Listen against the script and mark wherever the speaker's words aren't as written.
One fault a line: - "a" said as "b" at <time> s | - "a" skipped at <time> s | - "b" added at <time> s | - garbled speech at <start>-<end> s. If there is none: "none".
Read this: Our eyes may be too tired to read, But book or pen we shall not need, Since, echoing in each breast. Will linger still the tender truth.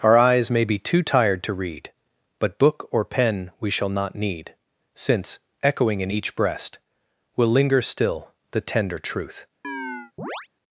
none